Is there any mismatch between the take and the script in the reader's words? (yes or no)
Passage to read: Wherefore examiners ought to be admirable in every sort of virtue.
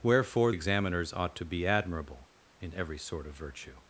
no